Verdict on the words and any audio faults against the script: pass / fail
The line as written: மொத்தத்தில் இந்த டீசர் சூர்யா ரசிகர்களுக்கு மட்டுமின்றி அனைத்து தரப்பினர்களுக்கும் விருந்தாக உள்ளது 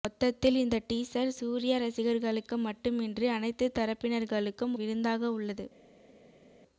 pass